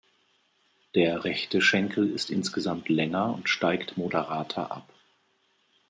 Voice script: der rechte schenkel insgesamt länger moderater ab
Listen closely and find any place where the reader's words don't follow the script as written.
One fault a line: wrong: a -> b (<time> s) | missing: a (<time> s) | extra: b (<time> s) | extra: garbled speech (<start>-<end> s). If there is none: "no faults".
extra: ist (2.1 s)
extra: und steigt (3.3 s)